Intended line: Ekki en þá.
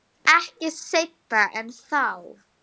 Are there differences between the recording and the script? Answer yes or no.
yes